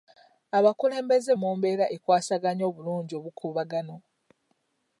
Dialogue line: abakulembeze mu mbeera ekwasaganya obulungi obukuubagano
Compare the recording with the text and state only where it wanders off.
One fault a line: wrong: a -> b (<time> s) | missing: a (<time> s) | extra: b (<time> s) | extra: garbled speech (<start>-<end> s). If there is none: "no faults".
no faults